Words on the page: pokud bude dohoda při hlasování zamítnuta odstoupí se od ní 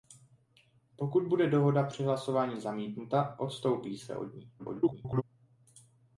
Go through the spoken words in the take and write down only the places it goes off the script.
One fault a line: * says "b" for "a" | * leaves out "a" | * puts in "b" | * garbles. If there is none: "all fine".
* garbles